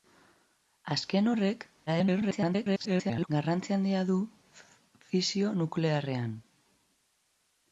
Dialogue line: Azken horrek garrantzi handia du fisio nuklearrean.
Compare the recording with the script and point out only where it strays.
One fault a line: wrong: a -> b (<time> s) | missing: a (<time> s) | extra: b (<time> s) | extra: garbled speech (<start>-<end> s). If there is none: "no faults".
extra: garbled speech (1.9-3.3 s)